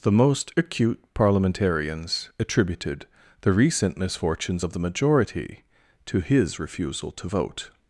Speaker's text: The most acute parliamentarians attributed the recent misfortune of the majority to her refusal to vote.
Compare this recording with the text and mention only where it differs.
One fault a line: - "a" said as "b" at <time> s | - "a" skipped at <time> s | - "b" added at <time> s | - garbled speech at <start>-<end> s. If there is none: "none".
- "misfortune" said as "misfortunes" at 4.0 s
- "her" said as "his" at 6.2 s